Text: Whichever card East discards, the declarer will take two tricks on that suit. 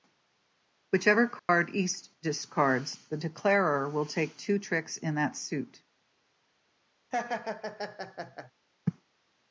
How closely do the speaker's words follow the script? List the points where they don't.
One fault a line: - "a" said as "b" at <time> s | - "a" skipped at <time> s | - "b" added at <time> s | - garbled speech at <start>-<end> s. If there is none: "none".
- "on" said as "in" at 5.0 s